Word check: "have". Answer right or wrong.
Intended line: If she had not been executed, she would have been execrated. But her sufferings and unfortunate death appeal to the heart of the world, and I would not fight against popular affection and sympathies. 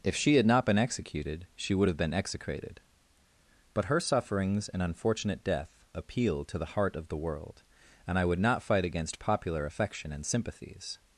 right